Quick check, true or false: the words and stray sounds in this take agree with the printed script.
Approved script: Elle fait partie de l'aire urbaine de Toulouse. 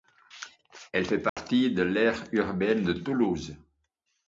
false